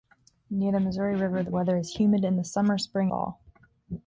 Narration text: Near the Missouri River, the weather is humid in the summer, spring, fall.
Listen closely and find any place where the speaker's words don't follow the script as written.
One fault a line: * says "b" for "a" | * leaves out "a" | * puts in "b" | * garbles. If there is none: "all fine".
all fine